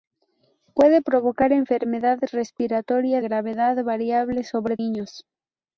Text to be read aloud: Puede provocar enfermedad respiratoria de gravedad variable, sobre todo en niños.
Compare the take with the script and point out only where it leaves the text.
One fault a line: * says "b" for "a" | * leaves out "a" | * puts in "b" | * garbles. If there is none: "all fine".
* leaves out "de"
* leaves out "todo en"